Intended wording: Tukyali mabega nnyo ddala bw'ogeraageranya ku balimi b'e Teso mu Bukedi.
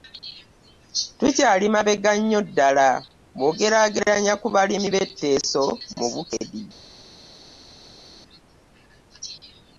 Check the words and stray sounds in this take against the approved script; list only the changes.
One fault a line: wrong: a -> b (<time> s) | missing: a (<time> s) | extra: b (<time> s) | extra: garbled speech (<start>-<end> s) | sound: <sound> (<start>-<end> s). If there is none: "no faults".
no faults